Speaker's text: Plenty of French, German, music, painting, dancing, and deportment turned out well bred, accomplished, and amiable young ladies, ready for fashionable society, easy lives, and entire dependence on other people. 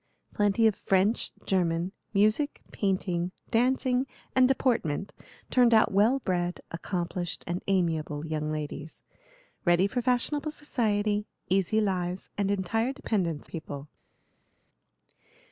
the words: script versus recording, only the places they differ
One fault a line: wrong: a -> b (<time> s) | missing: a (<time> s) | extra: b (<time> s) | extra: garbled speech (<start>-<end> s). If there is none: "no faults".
missing: on other (13.5 s)